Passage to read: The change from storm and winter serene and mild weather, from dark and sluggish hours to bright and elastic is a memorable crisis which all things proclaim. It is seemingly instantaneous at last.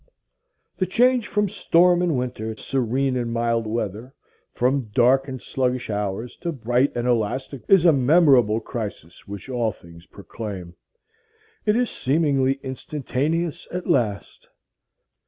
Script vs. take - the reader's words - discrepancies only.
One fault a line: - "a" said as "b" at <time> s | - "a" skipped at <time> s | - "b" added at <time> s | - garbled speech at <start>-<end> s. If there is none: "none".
none